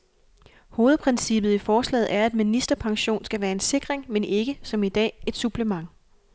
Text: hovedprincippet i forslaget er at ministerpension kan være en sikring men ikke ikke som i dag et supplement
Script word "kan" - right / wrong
wrong